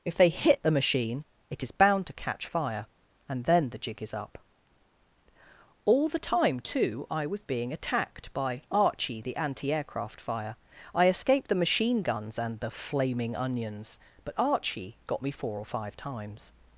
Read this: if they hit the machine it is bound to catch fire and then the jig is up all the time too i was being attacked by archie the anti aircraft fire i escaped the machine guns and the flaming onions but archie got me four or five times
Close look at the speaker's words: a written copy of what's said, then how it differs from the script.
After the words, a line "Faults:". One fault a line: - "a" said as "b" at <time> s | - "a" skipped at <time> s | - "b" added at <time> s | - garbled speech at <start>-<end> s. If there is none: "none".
if they hit the machine it is bound to catch fire and then the jig is up all the time too i was being attacked by archie the anti aircraft fire i escaped the machine guns and the flaming onions but archie got me four or five times
Faults:
none